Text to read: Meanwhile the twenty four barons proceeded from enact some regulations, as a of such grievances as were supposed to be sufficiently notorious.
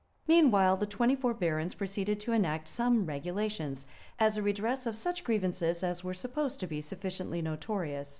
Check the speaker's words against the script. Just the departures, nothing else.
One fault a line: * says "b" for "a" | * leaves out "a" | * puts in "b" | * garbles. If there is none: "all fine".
* says "to" for "from"
* puts in "redress"